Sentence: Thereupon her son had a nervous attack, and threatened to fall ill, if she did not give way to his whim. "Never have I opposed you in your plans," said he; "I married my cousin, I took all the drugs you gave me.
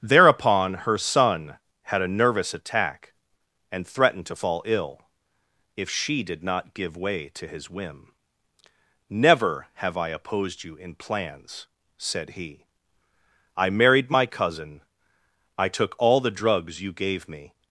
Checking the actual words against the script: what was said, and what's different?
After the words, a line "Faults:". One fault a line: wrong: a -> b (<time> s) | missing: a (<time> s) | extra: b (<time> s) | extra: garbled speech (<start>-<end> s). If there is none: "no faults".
Thereupon her son had a nervous attack, and threatened to fall ill, if she did not give way to his whim. "Never have I opposed you in plans," said he; "I married my cousin, I took all the drugs you gave me.
Faults:
missing: your (11.0 s)